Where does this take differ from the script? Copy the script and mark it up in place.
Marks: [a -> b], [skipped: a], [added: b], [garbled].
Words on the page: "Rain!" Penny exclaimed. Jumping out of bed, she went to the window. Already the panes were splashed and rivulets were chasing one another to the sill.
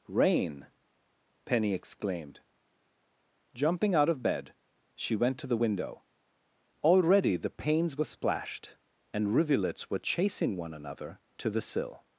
"Rain!" Penny exclaimed. Jumping out of bed, she went to the window. Already the panes were splashed and rivulets were chasing one another to the sill.